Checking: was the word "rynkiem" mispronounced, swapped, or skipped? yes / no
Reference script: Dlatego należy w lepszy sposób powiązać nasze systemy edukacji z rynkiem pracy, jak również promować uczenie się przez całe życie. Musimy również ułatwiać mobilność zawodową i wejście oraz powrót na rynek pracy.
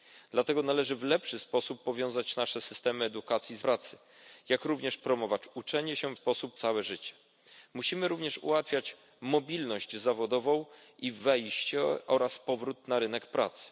yes